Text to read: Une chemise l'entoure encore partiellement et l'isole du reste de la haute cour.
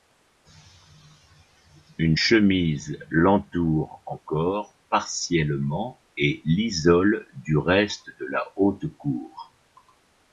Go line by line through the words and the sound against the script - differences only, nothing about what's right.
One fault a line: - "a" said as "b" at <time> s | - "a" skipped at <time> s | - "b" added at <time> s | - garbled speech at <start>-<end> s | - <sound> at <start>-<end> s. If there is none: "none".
none